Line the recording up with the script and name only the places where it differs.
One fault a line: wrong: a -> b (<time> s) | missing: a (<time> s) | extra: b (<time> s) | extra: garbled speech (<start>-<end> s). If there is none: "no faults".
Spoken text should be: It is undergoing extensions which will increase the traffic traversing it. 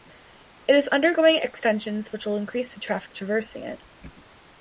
no faults